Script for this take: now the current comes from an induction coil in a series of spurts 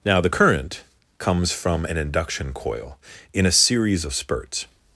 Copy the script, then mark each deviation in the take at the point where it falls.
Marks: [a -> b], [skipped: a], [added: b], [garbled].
now the current comes from an induction coil in a series of spurts